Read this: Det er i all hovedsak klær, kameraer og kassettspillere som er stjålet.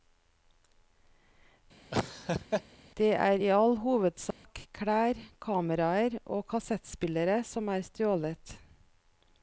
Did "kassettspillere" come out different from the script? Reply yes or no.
no